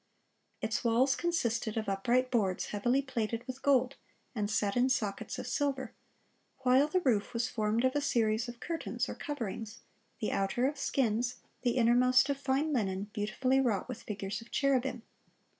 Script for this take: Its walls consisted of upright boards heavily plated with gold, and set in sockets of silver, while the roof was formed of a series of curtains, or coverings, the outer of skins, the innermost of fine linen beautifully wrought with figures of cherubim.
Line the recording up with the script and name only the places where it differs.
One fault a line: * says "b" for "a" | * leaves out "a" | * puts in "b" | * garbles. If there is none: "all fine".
all fine